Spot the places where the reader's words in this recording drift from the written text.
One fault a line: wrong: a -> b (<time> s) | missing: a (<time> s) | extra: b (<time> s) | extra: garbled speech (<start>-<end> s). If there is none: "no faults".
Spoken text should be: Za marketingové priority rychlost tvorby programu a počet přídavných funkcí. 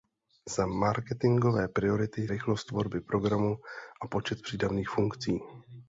no faults